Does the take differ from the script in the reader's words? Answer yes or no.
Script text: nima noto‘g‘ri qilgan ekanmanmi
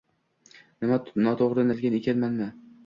no